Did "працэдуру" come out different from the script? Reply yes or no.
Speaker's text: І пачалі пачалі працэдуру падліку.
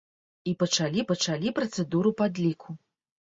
no